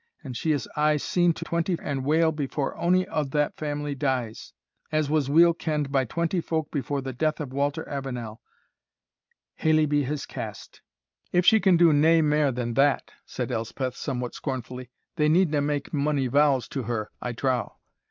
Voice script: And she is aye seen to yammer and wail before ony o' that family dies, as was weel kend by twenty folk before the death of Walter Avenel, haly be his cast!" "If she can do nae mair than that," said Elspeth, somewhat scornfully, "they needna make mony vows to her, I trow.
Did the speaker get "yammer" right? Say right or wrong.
wrong